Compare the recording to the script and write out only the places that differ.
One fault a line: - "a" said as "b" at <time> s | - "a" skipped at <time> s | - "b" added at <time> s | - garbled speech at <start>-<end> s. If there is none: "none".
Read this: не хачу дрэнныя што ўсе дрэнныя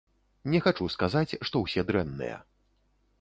- "дрэнныя" said as "сказаць" at 0.9 s